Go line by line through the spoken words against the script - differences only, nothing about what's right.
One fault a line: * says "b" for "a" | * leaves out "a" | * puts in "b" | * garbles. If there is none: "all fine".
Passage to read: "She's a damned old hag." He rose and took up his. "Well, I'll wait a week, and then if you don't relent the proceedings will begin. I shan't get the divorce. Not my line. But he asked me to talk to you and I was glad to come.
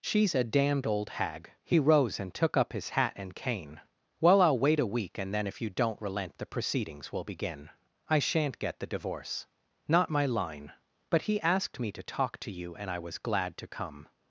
* puts in "hat and cane"